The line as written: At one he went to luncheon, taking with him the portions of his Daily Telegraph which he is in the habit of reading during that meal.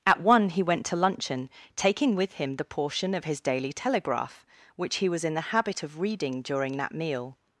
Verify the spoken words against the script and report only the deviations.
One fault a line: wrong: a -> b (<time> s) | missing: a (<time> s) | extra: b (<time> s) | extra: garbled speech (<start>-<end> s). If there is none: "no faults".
wrong: portions -> portion (2.6 s)
wrong: is -> was (5.1 s)